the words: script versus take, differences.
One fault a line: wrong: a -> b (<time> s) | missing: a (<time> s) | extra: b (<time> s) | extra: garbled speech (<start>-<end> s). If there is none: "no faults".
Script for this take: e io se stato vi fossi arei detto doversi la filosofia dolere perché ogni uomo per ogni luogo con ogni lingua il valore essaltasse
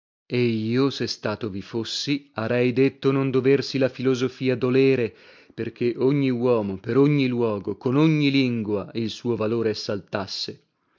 extra: non (3.1 s)
extra: suo (9.1 s)